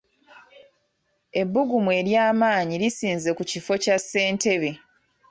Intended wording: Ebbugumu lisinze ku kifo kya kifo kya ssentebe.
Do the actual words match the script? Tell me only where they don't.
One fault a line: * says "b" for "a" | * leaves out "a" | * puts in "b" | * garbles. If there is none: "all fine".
* puts in "ery'amaanyi"
* leaves out "kifo kya"